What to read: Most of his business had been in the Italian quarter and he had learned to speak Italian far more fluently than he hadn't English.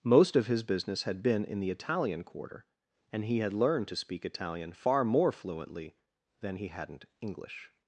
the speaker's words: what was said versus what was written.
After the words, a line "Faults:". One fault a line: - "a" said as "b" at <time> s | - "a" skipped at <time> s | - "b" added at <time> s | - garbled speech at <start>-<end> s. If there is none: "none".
Most of his business had been in the Italian quarter and he had learned to speak Italian far more fluently than he hadn't English.
Faults:
none